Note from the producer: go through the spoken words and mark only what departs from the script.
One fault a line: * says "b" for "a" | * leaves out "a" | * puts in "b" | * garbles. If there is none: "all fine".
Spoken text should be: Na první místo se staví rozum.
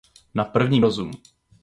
* leaves out "místo se staví"